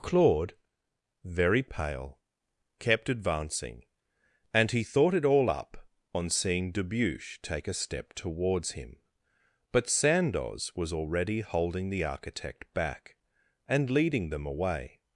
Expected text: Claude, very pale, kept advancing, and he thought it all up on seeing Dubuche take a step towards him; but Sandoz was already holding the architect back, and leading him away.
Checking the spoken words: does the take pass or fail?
fail